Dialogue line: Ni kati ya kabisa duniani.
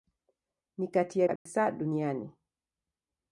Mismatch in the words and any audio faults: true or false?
true